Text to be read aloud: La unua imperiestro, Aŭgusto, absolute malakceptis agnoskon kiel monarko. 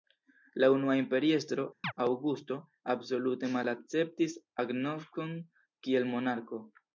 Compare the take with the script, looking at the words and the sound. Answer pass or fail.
fail